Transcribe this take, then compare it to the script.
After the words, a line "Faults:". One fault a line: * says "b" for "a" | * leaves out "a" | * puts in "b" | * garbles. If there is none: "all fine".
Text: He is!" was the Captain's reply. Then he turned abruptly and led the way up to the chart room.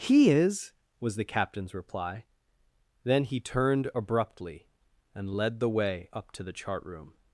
He is!" was the Captain's reply. Then he turned abruptly and led the way up to the chart room.
Faults:
all fine